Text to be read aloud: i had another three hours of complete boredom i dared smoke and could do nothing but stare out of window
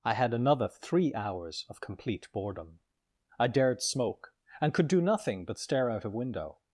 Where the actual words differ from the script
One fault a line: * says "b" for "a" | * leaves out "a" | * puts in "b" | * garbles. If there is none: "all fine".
all fine